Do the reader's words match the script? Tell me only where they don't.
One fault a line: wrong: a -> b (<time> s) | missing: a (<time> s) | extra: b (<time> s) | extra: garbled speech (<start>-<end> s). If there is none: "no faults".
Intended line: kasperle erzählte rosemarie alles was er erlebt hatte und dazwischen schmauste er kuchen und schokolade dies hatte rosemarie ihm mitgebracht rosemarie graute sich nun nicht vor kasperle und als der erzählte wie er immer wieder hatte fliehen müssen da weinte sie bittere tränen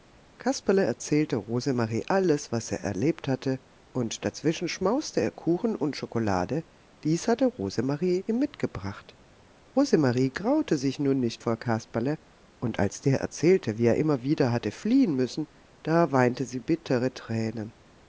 no faults